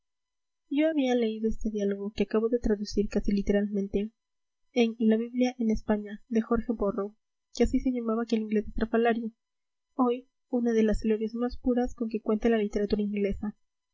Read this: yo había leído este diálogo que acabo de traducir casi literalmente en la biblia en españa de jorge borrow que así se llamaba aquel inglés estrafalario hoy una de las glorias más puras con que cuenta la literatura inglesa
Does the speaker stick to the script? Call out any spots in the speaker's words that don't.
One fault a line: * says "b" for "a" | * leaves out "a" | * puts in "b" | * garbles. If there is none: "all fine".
all fine